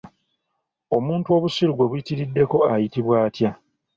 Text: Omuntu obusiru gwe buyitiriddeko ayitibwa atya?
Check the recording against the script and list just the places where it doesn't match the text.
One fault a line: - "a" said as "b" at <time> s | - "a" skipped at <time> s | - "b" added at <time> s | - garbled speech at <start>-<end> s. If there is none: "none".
none